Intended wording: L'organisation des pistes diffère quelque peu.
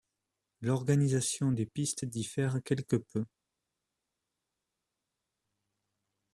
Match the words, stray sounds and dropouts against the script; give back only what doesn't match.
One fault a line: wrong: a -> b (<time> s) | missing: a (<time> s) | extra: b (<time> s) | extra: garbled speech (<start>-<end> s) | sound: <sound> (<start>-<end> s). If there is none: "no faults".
no faults